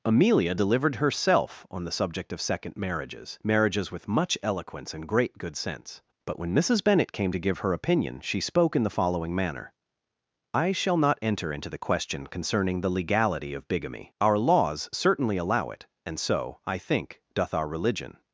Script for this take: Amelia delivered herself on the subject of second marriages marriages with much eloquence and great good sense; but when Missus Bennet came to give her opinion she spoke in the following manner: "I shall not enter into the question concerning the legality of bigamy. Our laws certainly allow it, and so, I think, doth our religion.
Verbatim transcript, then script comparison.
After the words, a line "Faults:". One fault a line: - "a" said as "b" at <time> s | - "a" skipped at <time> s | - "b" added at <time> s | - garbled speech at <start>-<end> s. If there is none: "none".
Amelia delivered herself on the subject of second marriages marriages with much eloquence and great good sense; but when Missus Bennet came to give her opinion she spoke in the following manner: "I shall not enter into the question concerning the legality of bigamy. Our laws certainly allow it, and so, I think, doth our religion.
Faults:
none